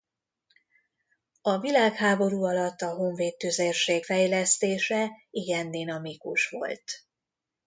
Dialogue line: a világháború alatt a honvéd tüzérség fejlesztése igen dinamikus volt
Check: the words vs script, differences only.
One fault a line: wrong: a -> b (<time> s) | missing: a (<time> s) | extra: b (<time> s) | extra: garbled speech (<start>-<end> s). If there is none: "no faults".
no faults